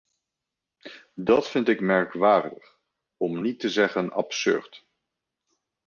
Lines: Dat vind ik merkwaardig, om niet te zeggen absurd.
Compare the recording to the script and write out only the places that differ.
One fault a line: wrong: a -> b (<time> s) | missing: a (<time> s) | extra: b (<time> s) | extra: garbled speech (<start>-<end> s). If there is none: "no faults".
no faults